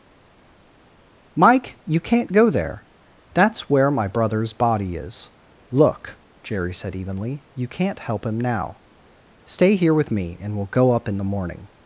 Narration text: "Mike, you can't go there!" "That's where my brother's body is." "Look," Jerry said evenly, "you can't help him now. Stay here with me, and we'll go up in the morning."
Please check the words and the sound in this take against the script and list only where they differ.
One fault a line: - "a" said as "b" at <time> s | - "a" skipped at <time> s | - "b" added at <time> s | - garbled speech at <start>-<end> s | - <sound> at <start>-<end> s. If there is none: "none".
none